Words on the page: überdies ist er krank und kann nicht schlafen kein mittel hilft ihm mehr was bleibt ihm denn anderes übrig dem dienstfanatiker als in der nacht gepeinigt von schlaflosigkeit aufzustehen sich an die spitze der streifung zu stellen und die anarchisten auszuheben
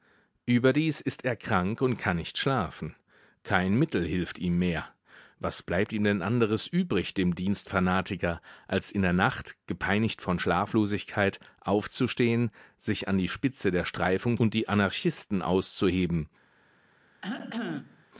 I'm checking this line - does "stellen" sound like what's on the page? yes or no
no